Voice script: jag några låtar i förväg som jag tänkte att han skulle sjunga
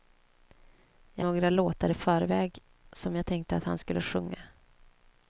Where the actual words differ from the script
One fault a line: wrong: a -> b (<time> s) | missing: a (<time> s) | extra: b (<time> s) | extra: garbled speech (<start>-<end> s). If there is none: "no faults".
no faults